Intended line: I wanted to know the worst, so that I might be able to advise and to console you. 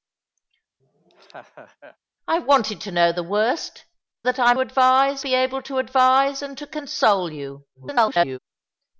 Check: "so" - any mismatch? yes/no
yes